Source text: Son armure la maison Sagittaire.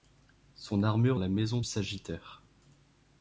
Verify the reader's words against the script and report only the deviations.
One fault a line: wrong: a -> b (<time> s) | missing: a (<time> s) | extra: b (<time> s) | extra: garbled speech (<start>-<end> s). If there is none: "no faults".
no faults